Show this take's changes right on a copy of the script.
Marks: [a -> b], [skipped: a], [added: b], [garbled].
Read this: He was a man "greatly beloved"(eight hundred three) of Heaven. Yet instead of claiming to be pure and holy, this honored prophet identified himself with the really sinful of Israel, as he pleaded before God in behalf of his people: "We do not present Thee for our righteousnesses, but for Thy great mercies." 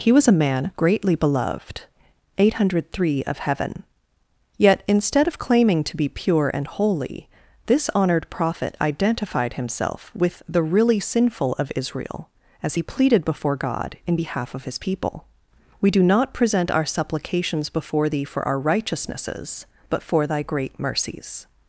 He was a man "greatly beloved"(eight hundred three) of Heaven. Yet instead of claiming to be pure and holy, this honored prophet identified himself with the really sinful of Israel, as he pleaded before God in behalf of his people: "We do not present [added: our supplications before] Thee for our righteousnesses, but for Thy great mercies."